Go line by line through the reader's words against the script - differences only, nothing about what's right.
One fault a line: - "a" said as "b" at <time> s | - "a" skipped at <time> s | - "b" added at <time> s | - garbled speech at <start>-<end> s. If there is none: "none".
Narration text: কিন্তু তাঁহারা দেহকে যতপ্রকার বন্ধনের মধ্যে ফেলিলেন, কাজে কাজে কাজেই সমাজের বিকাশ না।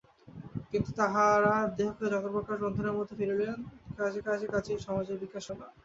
none